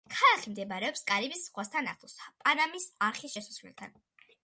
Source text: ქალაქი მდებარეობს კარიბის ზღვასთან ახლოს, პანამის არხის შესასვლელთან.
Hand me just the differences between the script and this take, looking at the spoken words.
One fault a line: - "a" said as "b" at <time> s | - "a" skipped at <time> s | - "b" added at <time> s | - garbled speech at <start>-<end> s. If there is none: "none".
none